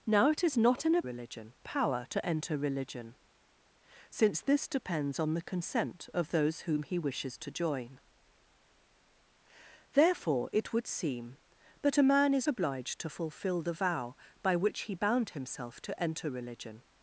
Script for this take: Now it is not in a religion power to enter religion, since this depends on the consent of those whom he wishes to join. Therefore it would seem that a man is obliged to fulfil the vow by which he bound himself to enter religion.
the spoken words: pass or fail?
pass